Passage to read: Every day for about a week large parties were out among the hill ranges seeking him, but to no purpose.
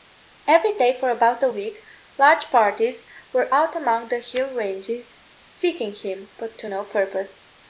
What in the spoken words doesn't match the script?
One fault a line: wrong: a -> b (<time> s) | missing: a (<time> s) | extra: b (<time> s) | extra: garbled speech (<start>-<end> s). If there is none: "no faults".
no faults